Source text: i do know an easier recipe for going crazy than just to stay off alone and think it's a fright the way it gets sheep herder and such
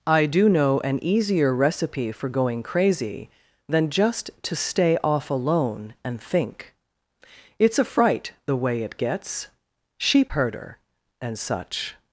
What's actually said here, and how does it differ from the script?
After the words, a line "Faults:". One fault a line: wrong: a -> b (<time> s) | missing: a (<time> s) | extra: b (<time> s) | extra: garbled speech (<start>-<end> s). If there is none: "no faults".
i do know an easier recipe for going crazy than just to stay off alone and think it's a fright the way it gets sheep herder and such
Faults:
no faults